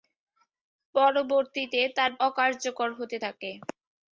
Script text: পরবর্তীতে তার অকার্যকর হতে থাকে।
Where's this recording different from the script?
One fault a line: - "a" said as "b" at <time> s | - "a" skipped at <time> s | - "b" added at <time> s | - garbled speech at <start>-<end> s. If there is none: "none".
none